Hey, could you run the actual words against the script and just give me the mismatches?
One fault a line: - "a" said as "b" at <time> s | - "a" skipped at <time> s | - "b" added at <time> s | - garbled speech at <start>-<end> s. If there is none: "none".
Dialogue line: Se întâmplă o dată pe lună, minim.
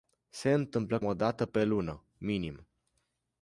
none